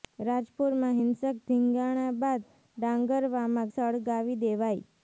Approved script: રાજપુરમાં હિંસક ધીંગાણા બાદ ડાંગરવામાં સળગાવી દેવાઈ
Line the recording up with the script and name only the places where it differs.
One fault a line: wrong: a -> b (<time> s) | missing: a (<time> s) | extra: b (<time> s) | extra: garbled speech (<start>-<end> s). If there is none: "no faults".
no faults